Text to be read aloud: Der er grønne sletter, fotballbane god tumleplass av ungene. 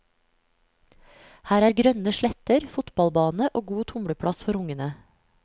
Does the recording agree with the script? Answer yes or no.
no